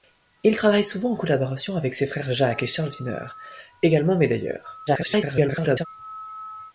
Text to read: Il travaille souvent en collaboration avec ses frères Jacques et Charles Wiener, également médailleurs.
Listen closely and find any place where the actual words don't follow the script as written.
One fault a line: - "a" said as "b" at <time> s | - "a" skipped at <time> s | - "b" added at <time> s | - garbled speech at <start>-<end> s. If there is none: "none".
- garbled speech at 4.9-5.9 s